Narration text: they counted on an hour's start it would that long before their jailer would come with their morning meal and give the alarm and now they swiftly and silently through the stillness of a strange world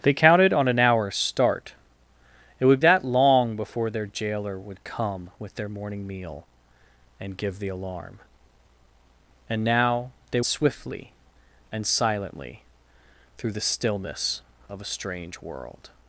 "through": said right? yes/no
yes